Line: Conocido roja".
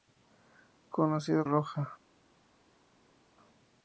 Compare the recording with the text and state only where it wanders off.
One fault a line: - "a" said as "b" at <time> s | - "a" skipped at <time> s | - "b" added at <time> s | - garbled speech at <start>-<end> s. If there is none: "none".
none